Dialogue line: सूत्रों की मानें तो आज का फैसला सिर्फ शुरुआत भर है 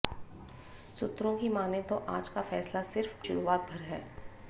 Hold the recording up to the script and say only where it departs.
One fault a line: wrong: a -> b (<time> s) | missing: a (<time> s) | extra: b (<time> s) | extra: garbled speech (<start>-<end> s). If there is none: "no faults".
no faults